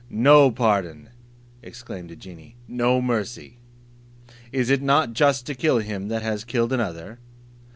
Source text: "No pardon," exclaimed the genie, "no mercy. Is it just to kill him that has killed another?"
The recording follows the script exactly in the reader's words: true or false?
false